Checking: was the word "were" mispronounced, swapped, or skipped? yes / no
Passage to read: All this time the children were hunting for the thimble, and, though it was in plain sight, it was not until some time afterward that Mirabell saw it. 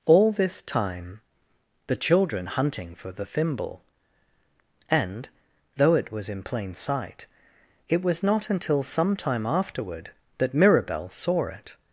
yes